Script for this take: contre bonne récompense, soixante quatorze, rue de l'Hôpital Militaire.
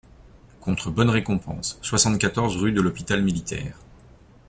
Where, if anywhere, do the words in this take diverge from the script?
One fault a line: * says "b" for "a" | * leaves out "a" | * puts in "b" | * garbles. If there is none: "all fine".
all fine